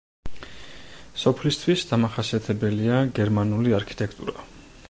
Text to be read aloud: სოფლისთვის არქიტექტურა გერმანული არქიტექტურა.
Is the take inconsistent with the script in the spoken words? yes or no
yes